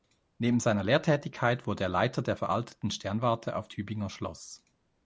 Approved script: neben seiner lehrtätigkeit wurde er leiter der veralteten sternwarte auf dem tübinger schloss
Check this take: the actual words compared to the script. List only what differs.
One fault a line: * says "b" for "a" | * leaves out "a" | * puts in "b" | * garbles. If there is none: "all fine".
* leaves out "dem"